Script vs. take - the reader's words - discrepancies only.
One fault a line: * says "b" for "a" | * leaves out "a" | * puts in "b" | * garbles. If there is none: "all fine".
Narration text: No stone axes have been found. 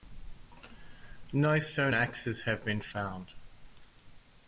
all fine